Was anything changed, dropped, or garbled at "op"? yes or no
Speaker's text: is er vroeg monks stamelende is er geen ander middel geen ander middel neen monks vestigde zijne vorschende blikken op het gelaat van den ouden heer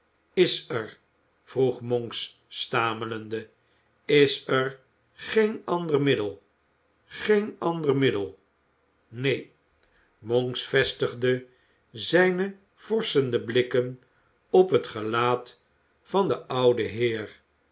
no